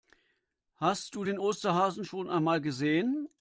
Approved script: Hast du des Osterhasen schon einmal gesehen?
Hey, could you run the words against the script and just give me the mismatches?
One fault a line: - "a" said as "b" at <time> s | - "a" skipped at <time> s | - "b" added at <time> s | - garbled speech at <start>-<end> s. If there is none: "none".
- "des" said as "den" at 1.2 s